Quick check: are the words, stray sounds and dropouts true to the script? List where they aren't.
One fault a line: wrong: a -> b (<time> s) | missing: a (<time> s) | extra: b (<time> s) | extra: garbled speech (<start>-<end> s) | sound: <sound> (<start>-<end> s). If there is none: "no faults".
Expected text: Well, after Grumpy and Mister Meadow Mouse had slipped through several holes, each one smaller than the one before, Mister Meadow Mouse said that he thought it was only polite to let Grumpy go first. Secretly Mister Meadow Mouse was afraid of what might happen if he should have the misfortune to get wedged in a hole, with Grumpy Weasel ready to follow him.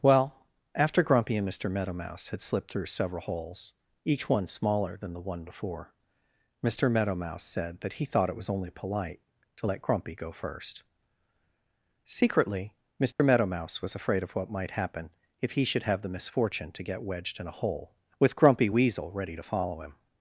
sound: dropout (13.1-13.2 s)